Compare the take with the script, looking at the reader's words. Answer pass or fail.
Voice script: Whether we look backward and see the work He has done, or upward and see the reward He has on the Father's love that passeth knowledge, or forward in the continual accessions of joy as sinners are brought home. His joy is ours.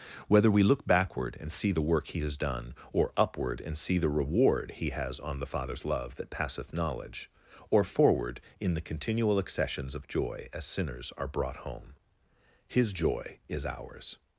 pass